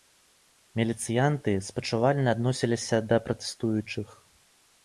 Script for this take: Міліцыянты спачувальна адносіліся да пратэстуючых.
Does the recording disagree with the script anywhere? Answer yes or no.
no